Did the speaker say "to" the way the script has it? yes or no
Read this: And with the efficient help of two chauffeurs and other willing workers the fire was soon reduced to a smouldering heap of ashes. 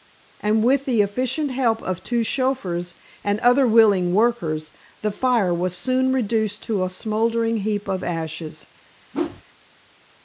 yes